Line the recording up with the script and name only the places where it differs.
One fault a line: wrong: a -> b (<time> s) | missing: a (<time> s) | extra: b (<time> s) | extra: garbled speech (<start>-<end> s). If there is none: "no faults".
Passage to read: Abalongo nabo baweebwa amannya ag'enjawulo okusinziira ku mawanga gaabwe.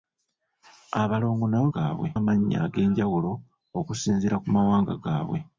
wrong: baweebwa -> gaabwe (1.7 s)